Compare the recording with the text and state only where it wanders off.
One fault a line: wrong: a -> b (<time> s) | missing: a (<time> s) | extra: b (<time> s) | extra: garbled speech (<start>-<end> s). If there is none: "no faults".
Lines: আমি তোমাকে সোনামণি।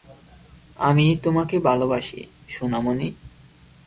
extra: ভালোবাসি (1.6 s)